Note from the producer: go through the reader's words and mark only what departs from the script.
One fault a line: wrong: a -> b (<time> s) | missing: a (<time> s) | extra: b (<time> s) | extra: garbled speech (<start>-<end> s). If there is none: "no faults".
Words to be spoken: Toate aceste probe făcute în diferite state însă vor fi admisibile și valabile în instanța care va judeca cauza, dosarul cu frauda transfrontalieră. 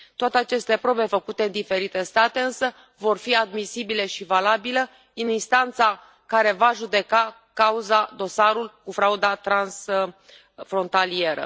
no faults